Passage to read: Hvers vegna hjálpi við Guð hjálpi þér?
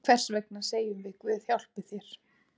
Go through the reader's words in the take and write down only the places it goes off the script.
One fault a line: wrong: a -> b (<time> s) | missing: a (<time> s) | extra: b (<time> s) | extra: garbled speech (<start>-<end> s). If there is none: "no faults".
wrong: hjálpi -> segjum (0.7 s)